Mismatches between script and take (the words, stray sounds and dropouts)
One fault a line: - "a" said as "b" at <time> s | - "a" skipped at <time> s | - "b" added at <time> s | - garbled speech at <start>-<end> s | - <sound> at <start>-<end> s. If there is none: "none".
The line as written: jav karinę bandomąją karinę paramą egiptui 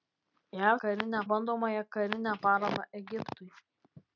none